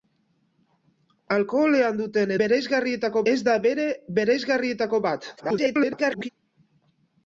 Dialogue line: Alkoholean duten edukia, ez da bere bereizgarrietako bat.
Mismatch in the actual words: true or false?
true